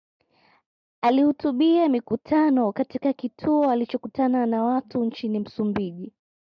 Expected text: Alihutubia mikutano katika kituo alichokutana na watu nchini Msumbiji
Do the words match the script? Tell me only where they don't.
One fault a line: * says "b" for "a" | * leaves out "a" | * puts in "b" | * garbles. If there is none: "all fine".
all fine